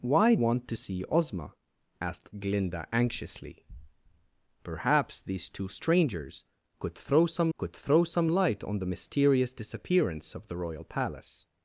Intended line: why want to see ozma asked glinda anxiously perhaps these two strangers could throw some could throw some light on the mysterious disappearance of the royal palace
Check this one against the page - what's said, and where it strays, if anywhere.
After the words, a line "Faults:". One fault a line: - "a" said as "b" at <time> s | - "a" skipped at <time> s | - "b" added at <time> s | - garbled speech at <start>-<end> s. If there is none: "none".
why want to see ozma asked glinda anxiously perhaps these two strangers could throw some could throw some light on the mysterious disappearance of the royal palace
Faults:
none